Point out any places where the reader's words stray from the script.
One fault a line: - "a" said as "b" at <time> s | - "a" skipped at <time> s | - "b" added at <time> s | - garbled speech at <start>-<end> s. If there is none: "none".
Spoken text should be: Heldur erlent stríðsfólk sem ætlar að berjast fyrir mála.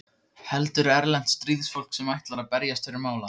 none